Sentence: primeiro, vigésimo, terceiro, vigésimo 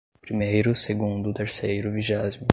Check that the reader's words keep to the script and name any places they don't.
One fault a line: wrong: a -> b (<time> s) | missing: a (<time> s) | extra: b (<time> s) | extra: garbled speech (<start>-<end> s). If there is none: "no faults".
wrong: vigésimo -> segundo (0.7 s)